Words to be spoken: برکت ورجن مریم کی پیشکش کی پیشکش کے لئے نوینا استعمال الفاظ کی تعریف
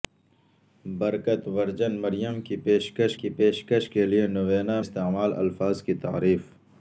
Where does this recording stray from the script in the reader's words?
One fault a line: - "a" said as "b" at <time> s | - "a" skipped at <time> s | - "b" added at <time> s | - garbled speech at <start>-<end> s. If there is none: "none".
none